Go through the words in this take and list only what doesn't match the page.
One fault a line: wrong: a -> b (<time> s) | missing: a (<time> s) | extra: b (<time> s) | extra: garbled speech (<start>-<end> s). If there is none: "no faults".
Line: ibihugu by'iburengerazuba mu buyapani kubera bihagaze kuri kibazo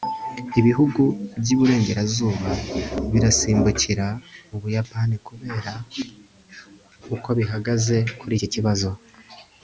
extra: birasimbukira (3.1 s)
extra: uko (7.2 s)
extra: iki (8.3 s)